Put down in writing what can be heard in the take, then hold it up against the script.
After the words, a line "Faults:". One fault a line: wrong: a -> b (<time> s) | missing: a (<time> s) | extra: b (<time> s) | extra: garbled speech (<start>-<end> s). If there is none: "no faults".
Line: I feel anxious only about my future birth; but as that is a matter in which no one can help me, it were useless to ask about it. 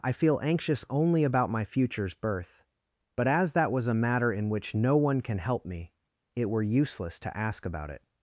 I feel anxious only about my futures birth; but as that was a matter in which no one can help me, it were useless to ask about it.
Faults:
wrong: future -> futures (1.6 s)
wrong: is -> was (3.7 s)